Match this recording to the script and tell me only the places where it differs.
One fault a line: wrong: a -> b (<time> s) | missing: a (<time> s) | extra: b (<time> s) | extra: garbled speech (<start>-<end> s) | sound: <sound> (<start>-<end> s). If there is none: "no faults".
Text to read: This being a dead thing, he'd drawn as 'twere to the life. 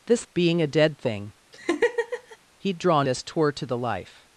sound: laugh (1.5-2.4 s)